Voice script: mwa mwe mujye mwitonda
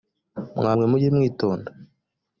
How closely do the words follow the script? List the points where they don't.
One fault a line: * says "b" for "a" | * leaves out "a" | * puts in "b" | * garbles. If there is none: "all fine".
all fine